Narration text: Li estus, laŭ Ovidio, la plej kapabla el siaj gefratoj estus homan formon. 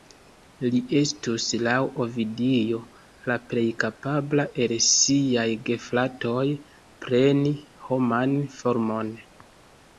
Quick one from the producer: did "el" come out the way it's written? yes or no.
yes